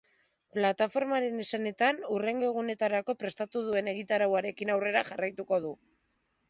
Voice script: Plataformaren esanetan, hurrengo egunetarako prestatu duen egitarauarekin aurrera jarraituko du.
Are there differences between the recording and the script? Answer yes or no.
no